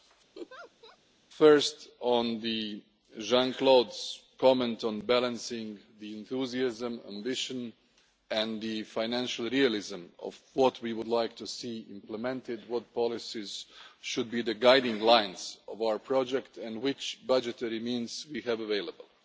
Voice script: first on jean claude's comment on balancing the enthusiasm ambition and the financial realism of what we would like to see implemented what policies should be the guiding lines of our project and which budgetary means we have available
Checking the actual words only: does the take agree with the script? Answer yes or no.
yes